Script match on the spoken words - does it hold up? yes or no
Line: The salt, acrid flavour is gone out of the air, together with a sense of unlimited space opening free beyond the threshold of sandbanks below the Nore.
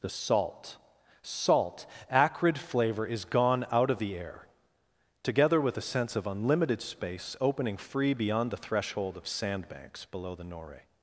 no